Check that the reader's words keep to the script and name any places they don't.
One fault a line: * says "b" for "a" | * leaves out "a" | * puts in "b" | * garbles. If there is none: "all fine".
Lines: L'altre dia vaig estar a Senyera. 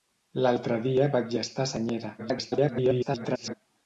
* garbles